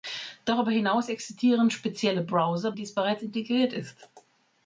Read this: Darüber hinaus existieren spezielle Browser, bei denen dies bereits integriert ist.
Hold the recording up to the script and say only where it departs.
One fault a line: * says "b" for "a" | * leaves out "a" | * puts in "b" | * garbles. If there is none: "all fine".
* leaves out "bei denen"